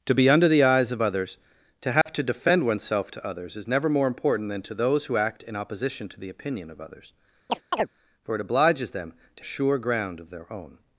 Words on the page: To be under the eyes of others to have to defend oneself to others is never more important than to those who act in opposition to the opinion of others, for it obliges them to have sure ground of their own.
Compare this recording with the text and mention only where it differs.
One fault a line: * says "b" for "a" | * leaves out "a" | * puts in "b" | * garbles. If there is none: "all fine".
* leaves out "have"